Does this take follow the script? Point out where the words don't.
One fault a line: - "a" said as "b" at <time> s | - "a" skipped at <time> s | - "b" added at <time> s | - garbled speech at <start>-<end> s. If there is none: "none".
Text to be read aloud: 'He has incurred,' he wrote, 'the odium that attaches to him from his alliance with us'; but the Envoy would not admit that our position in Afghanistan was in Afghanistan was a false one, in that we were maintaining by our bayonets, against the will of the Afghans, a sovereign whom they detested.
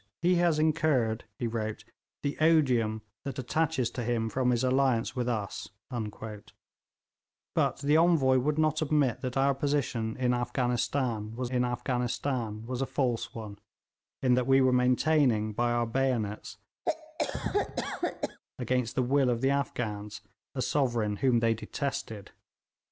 none